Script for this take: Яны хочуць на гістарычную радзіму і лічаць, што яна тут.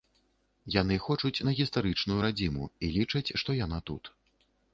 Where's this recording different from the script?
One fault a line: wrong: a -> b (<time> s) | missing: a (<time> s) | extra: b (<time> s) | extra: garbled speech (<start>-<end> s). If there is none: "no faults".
no faults